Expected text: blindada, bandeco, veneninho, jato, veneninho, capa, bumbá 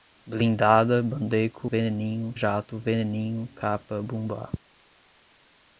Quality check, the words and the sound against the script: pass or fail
pass